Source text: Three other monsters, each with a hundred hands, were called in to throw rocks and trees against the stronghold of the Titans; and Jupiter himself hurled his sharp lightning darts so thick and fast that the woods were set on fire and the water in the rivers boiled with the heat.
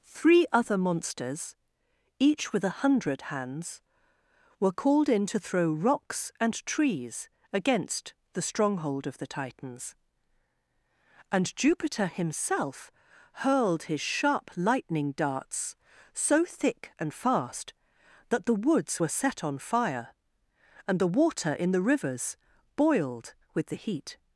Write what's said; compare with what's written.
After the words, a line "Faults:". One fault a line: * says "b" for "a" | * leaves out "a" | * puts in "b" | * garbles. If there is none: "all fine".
Three other monsters, each with a hundred hands, were called in to throw rocks and trees against the stronghold of the Titans; and Jupiter himself hurled his sharp lightning darts so thick and fast that the woods were set on fire and the water in the rivers boiled with the heat.
Faults:
all fine